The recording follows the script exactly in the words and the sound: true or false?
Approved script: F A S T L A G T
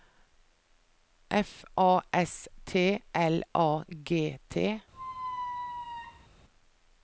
false